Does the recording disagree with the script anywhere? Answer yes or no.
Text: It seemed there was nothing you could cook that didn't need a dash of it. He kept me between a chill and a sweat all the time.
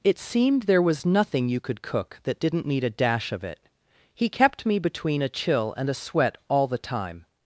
no